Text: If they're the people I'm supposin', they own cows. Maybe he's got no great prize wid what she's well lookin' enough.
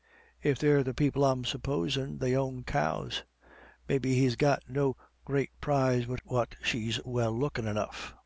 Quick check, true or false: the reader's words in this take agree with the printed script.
true